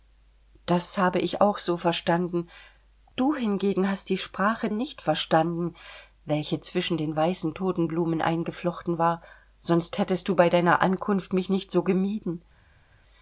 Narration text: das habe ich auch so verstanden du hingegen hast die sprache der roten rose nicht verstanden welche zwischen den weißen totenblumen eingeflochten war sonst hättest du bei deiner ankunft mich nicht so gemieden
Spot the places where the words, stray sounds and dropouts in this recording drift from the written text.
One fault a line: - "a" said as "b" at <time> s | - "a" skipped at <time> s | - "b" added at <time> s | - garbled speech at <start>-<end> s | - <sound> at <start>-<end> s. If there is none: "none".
- "der roten rose" skipped at 4.7 s